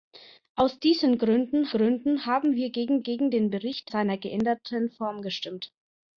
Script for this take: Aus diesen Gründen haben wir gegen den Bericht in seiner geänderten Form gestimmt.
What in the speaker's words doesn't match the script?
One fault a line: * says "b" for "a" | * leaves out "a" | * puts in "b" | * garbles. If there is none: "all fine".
* puts in "Gründen"
* puts in "gegen"
* leaves out "in"